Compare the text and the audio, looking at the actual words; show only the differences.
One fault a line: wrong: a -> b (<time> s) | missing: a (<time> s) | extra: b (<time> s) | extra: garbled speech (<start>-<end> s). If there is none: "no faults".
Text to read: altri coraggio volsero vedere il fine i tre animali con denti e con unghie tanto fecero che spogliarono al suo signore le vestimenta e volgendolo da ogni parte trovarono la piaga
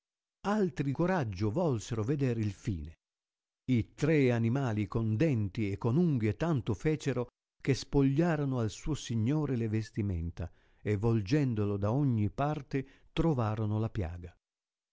no faults